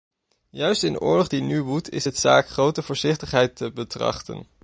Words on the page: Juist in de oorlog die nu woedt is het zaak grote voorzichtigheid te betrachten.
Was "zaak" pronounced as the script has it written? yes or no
yes